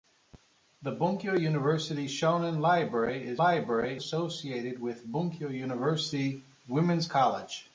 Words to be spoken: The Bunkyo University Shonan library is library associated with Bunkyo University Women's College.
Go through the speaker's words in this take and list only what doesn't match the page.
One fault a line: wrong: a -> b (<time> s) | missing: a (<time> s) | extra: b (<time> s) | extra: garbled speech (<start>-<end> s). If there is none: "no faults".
no faults